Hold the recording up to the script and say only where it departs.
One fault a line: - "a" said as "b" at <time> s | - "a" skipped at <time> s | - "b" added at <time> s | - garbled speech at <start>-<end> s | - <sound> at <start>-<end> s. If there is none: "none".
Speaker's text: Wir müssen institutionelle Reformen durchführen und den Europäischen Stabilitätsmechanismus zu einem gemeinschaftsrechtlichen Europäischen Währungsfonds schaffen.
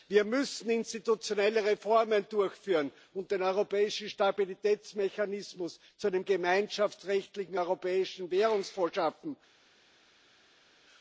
none